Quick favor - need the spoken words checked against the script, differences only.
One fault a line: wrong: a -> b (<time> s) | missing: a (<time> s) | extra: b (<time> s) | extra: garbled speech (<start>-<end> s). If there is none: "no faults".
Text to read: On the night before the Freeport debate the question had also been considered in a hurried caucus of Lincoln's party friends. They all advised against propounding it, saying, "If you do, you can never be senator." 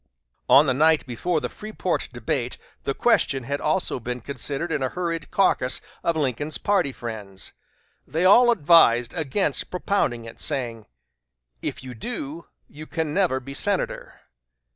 no faults